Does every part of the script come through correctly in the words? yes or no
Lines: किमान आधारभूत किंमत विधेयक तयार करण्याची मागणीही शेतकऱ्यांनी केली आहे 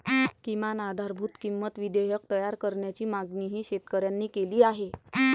yes